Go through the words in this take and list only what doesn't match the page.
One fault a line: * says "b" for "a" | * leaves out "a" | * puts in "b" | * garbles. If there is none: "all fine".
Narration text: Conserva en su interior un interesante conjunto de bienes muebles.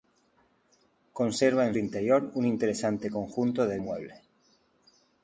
* leaves out "su"
* leaves out "bienes"